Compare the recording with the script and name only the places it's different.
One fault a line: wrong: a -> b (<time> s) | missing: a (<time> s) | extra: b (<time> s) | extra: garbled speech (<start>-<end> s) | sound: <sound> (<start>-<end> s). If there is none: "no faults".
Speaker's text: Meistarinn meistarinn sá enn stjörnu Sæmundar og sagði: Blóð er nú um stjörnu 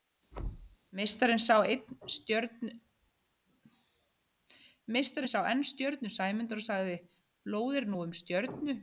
sound: thud (0.3-0.8 s)
missing: meistarinn (1.4 s)